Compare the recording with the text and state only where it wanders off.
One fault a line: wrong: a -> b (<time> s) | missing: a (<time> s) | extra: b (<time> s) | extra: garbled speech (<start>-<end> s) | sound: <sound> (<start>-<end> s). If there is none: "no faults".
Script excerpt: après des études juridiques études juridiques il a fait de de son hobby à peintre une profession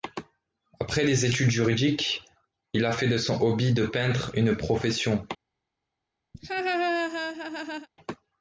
missing: études juridiques (2.2 s)
missing: de (3.2 s)
wrong: à -> de (3.7 s)
sound: laugh (6.3-7.9 s)